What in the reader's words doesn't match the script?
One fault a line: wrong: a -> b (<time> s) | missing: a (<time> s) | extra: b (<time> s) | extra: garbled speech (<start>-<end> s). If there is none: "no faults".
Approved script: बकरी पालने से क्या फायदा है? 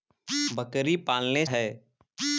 missing: से क्या फायदा (1.4 s)